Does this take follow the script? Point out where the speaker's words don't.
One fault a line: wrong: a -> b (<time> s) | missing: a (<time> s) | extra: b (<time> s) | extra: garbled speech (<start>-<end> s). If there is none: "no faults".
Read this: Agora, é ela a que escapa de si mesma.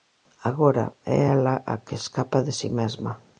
no faults